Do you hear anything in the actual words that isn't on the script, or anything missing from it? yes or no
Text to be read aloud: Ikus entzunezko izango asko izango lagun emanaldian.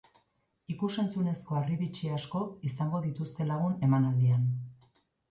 yes